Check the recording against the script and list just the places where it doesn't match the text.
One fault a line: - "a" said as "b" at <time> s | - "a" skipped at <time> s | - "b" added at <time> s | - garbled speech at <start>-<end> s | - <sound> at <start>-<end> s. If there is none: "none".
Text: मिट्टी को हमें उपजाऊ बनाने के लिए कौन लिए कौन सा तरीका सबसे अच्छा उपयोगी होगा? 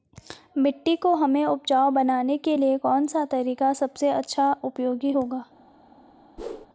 - "लिए कौन" skipped at 3.1 s
- whoosh at 6.4-6.7 s